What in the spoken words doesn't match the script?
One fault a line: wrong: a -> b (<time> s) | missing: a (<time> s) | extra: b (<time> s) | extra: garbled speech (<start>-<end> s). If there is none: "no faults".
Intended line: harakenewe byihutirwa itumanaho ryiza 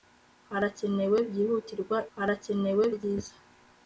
wrong: itumanaho -> harakenewe (2.2 s)